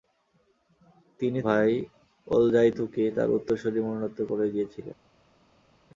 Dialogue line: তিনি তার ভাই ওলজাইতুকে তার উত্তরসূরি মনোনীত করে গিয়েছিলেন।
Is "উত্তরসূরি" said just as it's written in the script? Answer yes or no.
yes